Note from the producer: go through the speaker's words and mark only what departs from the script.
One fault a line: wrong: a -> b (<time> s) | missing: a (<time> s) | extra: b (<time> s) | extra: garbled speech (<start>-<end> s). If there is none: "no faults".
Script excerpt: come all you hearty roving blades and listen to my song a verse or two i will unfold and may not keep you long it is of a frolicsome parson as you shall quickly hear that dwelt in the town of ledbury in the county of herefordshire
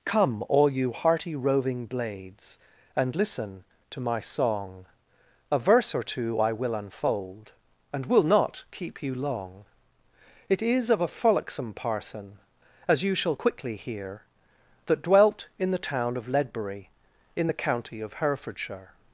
wrong: may -> will (8.0 s)